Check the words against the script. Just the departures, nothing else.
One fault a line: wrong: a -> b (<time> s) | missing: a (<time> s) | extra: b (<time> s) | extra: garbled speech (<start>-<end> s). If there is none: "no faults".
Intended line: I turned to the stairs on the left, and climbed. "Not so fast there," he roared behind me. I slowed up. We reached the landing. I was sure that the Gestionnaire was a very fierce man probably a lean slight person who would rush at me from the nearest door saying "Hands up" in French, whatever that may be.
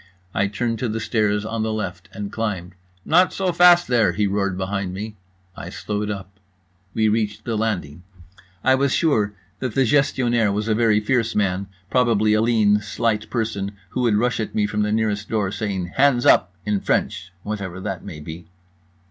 no faults